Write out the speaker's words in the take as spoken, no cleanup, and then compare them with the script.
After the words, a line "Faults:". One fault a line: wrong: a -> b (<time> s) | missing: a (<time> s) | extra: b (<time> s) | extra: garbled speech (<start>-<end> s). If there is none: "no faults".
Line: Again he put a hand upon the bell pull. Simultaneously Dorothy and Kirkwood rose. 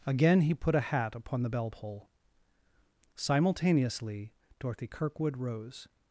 Again he put a hat upon the bell pull. Simultaneously Dorothy Kirkwood rose.
Faults:
wrong: hand -> hat (0.8 s)
missing: and (4.9 s)